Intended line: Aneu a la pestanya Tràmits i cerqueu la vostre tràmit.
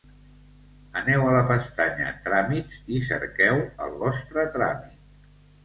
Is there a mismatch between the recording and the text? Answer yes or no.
yes